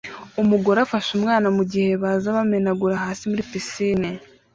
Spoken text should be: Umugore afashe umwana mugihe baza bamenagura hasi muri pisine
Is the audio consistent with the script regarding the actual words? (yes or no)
yes